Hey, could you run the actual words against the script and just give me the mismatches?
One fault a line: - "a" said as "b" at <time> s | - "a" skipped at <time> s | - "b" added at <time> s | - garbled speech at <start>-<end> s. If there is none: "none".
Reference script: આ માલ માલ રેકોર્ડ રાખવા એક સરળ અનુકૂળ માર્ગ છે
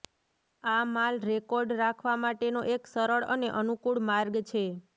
- "માલ" skipped at 1.2 s
- "માટેનો" added at 2.2 s
- "અને" added at 3.3 s